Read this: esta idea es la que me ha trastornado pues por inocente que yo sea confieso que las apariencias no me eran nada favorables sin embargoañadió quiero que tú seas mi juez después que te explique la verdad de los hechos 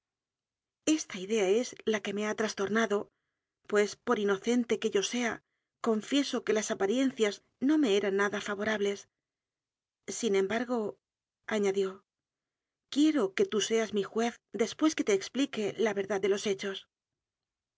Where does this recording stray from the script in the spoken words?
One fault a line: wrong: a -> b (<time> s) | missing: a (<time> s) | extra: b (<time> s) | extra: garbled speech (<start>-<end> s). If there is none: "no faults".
no faults